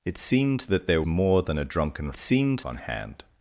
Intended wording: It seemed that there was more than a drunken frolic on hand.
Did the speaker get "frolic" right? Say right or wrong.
wrong